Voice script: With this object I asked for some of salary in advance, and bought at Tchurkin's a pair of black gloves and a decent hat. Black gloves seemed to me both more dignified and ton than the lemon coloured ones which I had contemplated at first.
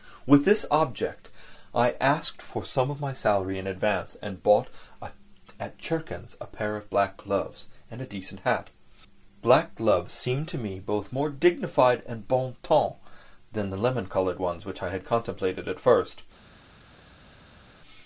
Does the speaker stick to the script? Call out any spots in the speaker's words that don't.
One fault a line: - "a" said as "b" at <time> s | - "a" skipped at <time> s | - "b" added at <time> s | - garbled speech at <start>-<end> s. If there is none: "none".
- "my" added at 3.0 s
- "bon" added at 12.3 s